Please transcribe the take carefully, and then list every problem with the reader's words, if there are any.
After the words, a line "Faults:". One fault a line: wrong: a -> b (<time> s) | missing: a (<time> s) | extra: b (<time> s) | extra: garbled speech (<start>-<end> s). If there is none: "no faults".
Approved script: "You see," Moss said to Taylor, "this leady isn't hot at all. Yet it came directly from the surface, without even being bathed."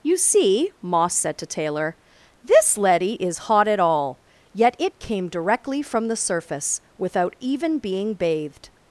"You see," Moss said to Taylor, "this leady is hot at all. Yet it came directly from the surface, without even being bathed."
Faults:
wrong: isn't -> is (3.1 s)